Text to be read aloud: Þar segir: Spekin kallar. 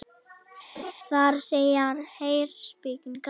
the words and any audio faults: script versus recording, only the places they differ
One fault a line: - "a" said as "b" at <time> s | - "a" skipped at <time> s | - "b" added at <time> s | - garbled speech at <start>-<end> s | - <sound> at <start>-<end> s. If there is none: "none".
- laugh at 0.7-0.9 s
- "Heyr" added at 2.2 s